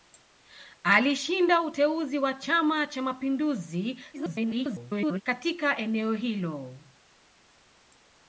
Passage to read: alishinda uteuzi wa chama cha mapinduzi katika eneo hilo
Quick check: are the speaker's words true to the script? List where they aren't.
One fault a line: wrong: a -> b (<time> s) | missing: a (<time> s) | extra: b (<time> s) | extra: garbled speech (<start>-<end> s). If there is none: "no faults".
extra: garbled speech (4.1-5.2 s)